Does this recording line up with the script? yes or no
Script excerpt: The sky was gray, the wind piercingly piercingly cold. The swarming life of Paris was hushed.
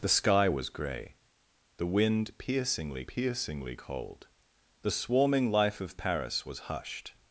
yes